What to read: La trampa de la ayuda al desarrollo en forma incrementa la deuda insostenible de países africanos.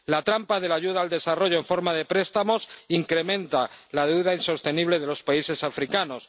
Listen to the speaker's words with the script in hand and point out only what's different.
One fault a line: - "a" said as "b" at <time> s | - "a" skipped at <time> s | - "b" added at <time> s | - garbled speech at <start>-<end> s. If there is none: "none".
- "de préstamos" added at 1.9 s
- "los" added at 5.1 s